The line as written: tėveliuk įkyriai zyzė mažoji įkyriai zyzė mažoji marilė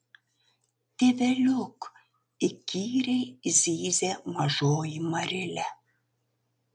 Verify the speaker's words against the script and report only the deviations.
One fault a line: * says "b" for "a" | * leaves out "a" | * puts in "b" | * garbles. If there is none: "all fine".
* leaves out "įkyriai zyzė mažoji"